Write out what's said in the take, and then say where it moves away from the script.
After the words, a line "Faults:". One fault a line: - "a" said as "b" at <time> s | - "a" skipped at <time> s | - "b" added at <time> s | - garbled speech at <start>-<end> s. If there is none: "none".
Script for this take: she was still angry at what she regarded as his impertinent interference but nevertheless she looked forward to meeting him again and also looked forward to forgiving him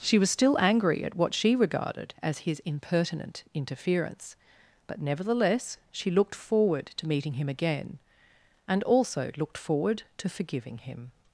she was still angry at what she regarded as his impertinent interference but nevertheless she looked forward to meeting him again and also looked forward to forgiving him
Faults:
none